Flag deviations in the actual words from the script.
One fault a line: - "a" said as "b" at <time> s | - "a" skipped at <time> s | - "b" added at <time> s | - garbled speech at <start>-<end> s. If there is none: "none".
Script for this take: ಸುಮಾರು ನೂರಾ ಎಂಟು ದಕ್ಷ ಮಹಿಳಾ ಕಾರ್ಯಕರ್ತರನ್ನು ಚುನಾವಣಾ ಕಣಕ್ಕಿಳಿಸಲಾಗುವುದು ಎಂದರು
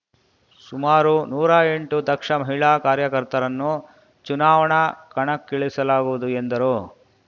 none